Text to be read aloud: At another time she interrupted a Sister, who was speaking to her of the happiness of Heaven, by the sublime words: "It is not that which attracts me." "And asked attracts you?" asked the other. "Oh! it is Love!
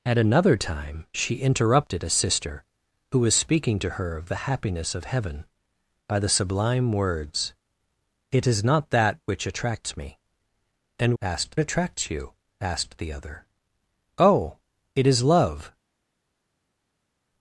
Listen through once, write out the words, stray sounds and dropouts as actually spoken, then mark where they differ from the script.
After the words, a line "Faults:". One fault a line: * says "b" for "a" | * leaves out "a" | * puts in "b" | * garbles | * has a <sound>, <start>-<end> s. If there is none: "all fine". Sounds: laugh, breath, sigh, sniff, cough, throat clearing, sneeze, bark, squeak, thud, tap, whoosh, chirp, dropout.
At another time she interrupted a Sister, who was speaking to her of the happiness of Heaven, by the sublime words: "It is not that which attracts me." "And asked attracts you?" asked the other. "Oh! it is Love!
Faults:
all fine